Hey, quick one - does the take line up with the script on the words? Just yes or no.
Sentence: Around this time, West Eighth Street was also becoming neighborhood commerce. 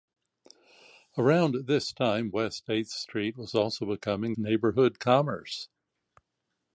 yes